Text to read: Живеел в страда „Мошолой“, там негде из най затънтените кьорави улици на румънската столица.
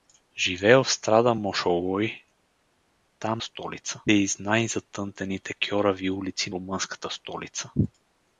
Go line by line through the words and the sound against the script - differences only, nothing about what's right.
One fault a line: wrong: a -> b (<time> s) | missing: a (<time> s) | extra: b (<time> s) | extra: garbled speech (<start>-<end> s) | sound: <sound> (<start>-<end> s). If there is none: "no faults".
wrong: негде -> столица (3.4 s)
missing: на (6.5 s)